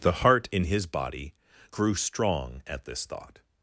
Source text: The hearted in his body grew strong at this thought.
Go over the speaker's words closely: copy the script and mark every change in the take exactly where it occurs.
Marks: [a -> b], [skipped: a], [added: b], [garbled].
The [hearted -> heart] in his body grew strong at this thought.